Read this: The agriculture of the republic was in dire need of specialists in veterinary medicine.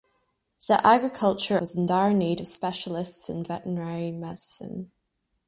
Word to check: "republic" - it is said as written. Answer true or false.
false